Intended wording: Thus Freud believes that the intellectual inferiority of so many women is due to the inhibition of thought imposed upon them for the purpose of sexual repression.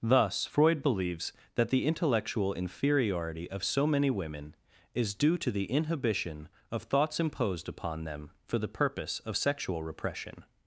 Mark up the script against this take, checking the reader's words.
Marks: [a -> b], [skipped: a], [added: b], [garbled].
Thus Freud believes that the intellectual inferiority of so many women is due to the inhibition of [thought -> thoughts] imposed upon them for the purpose of sexual repression.